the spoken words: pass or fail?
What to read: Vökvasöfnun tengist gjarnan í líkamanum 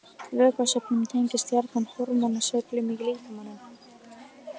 fail